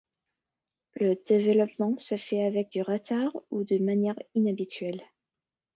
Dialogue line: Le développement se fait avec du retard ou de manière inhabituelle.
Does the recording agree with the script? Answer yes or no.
yes